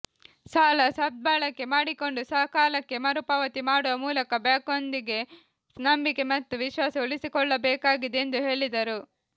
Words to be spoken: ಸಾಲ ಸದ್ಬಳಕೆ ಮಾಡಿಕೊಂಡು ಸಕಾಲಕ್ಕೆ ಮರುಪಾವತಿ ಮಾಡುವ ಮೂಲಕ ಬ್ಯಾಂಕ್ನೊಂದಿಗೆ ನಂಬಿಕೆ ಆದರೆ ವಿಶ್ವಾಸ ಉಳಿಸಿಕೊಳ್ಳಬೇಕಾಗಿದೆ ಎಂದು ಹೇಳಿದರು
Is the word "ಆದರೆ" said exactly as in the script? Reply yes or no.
no